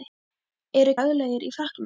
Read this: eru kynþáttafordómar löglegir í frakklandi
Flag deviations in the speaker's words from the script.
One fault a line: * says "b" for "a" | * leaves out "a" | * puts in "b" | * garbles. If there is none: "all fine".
* leaves out "kynþáttafordómar"